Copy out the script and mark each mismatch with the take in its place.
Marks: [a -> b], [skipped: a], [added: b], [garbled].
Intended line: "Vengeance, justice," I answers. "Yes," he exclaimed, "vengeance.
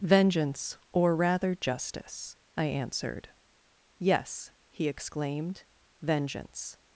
"Vengeance, [added: or rather] justice," I [answers. -> answered] "Yes," he exclaimed, "vengeance.